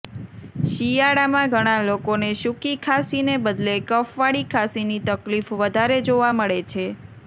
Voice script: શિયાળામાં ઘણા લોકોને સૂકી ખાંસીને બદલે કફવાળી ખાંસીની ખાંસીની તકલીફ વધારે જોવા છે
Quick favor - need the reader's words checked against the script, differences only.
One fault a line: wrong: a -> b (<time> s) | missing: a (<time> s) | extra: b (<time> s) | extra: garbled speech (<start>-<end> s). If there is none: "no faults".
missing: ખાંસીની (5.0 s)
extra: મળે (6.3 s)